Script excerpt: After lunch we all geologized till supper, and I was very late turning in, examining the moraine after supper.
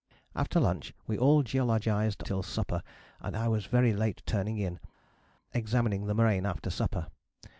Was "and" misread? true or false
false